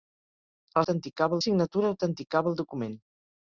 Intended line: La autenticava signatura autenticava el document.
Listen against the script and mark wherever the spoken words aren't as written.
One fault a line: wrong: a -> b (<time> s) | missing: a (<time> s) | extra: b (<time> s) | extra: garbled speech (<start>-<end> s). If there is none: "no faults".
no faults